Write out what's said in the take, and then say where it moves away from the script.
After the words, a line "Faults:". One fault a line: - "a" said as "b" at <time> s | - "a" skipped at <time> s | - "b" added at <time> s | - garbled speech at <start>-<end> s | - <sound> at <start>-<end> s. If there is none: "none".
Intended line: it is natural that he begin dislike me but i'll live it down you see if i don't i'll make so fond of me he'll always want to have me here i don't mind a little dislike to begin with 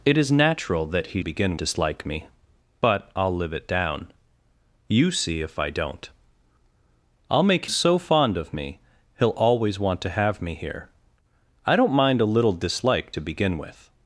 it is natural that he begin dislike me but i'll live it down you see if i don't i'll make so fond of me he'll always want to have me here i don't mind a little dislike to begin with
Faults:
none